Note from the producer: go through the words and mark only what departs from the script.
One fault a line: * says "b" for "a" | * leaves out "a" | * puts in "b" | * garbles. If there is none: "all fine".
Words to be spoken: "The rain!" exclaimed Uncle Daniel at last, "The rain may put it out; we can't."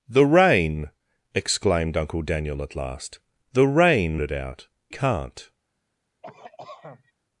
* leaves out "may put"
* leaves out "we"